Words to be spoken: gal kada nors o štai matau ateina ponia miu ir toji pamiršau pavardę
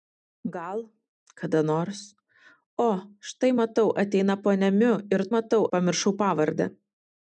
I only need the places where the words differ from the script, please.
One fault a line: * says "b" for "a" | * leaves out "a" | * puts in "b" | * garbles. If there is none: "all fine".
* says "matau" for "toji"